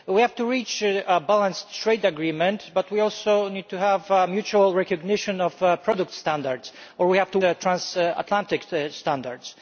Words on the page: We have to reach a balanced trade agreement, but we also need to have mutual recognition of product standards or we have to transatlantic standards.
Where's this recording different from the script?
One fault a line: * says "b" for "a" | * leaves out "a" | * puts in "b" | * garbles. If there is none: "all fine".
all fine